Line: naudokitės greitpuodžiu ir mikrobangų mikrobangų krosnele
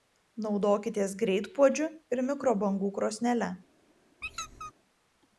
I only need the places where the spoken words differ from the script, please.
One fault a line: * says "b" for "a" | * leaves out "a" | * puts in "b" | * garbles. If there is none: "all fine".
* leaves out "mikrobangų"